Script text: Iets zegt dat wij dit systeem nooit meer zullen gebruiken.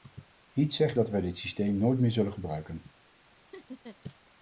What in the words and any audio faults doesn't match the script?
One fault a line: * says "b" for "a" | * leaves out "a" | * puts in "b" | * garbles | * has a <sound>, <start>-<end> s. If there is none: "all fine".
* has a laugh, 3.5-4.0 s